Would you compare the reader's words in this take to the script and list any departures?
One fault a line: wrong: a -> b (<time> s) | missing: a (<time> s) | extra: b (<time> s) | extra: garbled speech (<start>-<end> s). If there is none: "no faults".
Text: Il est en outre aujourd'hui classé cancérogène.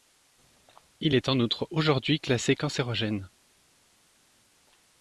no faults